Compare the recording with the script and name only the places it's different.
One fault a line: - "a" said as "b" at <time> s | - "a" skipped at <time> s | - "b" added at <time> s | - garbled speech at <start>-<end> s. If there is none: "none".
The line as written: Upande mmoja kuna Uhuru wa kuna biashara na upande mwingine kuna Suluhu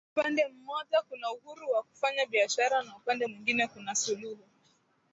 - "kuna" said as "kufanya" at 1.8 s